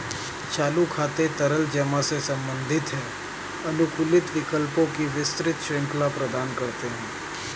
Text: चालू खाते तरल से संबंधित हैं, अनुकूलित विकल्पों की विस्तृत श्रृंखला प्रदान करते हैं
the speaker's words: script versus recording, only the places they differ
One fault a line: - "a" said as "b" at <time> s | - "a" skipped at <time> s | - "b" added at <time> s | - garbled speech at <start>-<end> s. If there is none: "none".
- "जमा" added at 1.7 s